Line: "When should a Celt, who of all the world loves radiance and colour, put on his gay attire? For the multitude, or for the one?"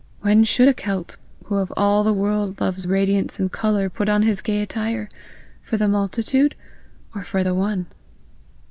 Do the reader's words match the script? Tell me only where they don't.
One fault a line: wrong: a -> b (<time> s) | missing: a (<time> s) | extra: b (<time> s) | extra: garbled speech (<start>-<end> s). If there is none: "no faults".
no faults